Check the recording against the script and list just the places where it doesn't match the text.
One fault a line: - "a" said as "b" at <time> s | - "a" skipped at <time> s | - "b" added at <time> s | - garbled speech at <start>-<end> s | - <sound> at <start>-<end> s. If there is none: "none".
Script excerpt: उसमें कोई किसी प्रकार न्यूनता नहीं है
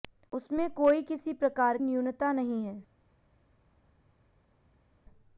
none